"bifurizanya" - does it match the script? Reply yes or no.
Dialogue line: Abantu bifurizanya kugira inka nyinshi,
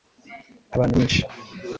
no